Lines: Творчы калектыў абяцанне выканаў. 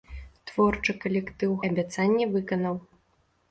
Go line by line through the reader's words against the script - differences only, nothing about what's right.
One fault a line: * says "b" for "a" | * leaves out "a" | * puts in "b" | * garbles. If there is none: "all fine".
all fine